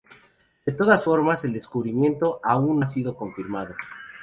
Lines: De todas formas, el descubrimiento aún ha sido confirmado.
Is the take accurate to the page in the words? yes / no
yes